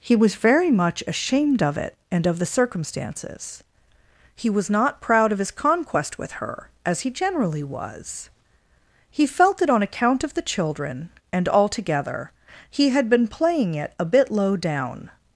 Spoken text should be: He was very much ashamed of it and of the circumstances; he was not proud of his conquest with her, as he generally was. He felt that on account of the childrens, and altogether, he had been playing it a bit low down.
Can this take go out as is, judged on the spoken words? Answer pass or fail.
fail